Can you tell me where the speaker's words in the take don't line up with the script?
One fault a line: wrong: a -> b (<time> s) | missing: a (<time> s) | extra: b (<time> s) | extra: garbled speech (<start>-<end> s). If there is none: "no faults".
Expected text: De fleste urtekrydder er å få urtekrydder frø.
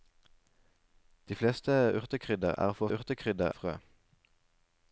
no faults